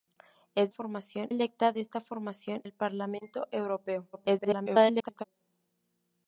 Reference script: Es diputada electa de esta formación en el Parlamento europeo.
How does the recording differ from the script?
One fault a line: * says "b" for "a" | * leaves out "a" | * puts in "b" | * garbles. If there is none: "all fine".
* says "formación" for "diputada"
* leaves out "en"
* garbles